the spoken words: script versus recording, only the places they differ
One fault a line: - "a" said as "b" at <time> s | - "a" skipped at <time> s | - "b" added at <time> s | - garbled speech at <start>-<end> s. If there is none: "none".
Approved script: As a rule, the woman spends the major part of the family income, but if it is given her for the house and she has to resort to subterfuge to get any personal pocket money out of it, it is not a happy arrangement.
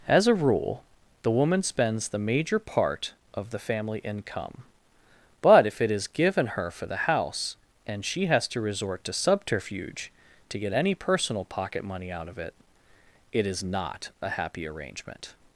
none